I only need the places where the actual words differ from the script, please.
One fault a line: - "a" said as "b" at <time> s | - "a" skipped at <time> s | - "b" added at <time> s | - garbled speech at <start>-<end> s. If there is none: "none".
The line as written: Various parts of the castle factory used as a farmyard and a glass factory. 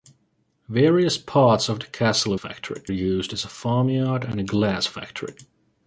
none